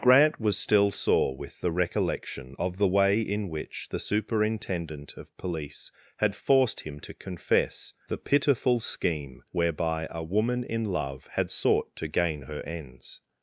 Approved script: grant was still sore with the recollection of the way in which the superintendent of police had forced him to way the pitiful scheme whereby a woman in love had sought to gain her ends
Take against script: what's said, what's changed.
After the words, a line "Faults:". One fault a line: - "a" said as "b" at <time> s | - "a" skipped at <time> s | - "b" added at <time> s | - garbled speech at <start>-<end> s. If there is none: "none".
grant was still sore with the recollection of the way in which the superintendent of police had forced him to confess the pitiful scheme whereby a woman in love had sought to gain her ends
Faults:
- "way" said as "confess" at 7.1 s